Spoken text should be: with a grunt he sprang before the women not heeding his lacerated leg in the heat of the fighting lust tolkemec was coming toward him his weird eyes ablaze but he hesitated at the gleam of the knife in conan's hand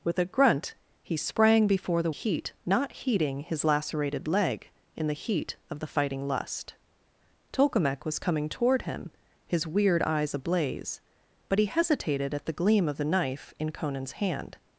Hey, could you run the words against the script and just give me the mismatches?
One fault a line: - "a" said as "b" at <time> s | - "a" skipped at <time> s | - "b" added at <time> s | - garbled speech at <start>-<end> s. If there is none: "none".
- "women" said as "heat" at 2.1 s